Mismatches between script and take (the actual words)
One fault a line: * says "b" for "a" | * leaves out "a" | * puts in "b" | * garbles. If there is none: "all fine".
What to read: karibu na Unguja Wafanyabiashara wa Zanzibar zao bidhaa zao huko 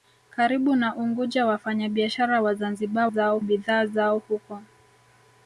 all fine